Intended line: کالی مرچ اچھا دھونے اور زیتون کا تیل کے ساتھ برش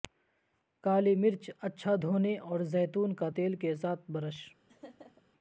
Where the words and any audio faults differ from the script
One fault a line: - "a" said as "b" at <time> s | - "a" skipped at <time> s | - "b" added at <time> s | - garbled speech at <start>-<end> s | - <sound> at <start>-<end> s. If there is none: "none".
- laugh at 4.7-5.2 s